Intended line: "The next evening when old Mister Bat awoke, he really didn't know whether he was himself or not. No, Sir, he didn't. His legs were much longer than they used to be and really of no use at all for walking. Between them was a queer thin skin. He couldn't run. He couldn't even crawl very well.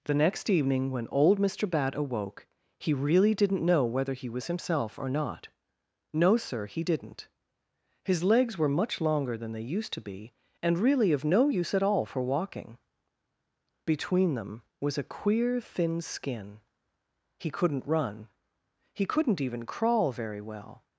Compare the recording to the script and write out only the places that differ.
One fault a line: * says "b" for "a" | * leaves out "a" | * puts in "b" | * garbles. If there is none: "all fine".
all fine